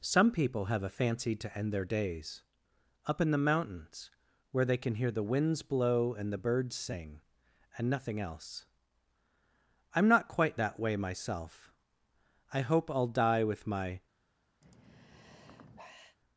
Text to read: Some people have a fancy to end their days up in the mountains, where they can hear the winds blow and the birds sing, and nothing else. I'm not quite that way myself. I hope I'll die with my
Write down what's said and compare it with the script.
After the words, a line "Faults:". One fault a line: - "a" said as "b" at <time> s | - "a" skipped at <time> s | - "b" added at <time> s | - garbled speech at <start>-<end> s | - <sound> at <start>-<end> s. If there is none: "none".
Some people have a fancy to end their days up in the mountains, where they can hear the winds blow and the birds sing, and nothing else. I'm not quite that way myself. I hope I'll die with my
Faults:
- sigh at 14.6-16.2 s